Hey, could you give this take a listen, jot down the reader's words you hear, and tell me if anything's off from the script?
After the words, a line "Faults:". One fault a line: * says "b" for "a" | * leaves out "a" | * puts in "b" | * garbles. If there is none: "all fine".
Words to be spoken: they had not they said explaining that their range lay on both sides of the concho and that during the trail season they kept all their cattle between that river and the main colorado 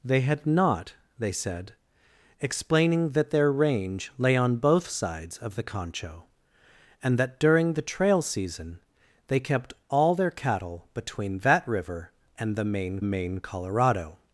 they had not they said explaining that their range lay on both sides of the concho and that during the trail season they kept all their cattle between that river and the main main colorado
Faults:
* puts in "main"